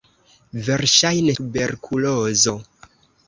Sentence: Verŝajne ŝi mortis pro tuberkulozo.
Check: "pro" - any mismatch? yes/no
yes